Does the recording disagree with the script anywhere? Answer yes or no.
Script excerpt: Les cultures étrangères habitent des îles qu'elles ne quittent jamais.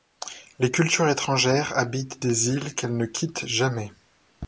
no